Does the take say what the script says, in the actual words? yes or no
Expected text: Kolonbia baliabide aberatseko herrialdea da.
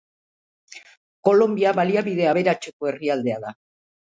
yes